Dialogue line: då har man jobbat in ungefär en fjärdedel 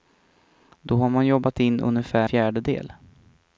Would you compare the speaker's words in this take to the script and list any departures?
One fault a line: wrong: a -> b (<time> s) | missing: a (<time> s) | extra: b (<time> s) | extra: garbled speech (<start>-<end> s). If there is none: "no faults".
missing: en (2.3 s)